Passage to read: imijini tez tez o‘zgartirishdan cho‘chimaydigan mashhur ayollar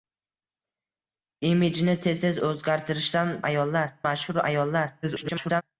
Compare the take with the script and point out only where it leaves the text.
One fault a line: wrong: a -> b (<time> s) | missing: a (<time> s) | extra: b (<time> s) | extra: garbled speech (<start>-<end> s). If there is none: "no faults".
wrong: cho‘chimaydigan -> ayollar (3.5 s)
extra: garbled speech (5.0-5.6 s)